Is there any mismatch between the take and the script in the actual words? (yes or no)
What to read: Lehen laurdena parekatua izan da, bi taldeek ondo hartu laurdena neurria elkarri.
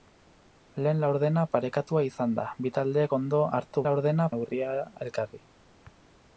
no